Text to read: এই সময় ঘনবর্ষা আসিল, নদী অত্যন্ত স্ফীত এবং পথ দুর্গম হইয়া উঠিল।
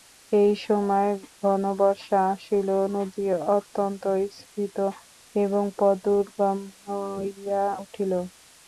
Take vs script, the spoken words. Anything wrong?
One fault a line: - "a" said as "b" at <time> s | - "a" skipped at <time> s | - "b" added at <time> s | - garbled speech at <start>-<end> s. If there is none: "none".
none